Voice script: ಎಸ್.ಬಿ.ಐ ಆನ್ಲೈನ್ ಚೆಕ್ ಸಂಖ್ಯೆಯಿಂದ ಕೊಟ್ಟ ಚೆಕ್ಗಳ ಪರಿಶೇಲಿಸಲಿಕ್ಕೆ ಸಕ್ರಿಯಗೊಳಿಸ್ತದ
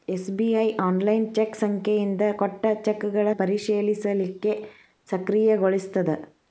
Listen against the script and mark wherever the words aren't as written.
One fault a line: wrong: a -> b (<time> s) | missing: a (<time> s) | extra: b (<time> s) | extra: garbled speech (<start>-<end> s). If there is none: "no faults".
no faults